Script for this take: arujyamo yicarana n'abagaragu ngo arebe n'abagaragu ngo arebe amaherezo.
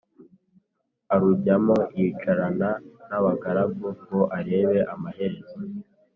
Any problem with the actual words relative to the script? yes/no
yes